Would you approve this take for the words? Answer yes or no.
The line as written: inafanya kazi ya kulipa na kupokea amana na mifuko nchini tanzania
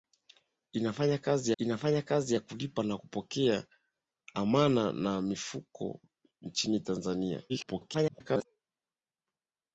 no